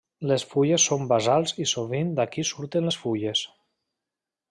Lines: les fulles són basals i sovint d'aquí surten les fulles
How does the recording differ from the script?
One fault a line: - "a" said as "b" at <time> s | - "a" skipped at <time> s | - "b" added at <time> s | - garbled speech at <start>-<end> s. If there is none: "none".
none